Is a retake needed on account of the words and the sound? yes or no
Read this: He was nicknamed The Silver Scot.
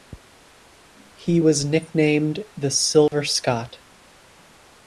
yes